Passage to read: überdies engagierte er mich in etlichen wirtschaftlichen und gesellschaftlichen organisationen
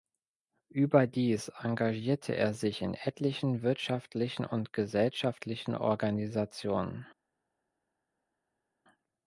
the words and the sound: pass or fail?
fail